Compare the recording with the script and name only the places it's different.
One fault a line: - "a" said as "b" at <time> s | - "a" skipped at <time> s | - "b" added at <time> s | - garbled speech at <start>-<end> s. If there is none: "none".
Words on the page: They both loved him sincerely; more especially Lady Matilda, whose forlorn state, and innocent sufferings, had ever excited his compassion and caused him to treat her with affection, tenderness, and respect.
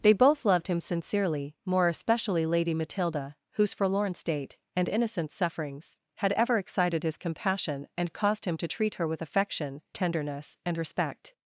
none